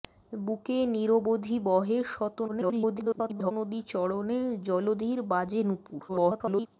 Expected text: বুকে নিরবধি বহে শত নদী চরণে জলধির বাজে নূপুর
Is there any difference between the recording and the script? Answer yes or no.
yes